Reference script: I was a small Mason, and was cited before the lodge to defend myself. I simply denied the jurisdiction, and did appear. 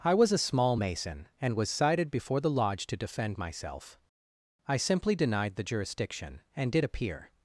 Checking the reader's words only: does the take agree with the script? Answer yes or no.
yes